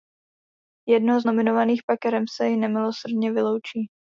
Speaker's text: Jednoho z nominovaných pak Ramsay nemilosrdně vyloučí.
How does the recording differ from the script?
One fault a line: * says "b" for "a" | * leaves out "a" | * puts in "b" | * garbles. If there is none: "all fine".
all fine